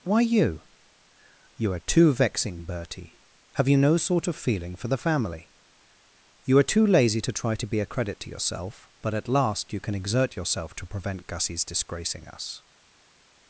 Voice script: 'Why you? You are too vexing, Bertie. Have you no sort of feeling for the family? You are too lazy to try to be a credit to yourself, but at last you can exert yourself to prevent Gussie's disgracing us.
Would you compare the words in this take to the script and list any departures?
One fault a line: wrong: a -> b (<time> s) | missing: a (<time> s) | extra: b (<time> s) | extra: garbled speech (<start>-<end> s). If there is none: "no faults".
no faults